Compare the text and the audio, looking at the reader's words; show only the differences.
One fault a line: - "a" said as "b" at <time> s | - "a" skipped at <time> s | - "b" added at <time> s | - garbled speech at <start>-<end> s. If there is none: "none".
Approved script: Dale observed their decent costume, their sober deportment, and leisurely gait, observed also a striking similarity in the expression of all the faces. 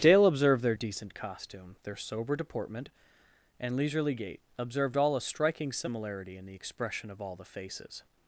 - "also" said as "all" at 4.9 s